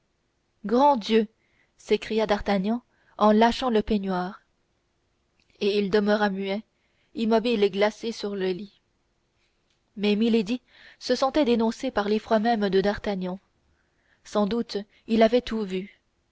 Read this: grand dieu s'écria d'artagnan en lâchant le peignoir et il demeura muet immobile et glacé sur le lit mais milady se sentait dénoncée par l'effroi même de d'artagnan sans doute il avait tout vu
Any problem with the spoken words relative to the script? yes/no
no